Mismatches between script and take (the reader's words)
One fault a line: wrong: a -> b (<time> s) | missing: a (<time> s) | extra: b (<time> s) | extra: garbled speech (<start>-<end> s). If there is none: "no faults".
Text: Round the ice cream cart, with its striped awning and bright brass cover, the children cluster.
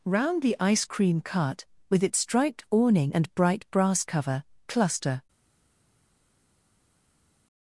missing: the children (4.4 s)